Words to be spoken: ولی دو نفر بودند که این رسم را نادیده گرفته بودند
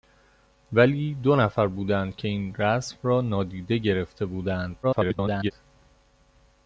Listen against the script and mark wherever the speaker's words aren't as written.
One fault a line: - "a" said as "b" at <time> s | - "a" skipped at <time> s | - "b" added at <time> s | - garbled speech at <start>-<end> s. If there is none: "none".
- garbled speech at 4.8-5.5 s